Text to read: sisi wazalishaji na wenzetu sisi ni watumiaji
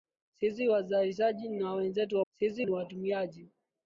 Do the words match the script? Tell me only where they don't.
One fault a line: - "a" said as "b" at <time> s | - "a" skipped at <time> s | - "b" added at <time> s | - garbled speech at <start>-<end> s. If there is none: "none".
none